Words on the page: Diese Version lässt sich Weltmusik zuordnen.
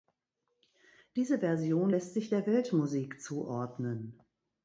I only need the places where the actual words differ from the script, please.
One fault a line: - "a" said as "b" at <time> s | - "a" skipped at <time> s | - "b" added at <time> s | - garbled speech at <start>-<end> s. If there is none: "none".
- "der" added at 2.3 s